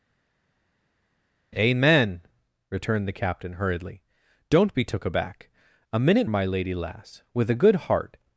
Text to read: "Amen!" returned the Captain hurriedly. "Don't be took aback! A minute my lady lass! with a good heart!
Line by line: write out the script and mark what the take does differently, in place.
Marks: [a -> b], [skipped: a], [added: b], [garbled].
"Amen!" returned the Captain hurriedly. "Don't be took aback! A minute my lady lass! with a good heart!